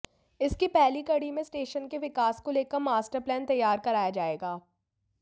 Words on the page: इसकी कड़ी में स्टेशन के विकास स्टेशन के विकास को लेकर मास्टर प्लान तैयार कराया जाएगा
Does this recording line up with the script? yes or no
no